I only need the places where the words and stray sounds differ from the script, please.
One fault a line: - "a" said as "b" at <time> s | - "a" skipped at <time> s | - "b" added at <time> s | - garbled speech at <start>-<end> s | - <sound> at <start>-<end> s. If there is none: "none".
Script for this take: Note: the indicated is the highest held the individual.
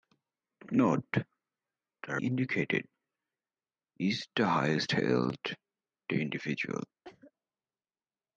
- cough at 7.0-7.3 s